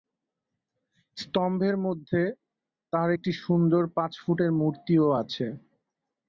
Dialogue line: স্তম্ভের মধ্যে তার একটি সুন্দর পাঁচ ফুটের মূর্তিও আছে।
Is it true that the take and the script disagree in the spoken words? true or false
false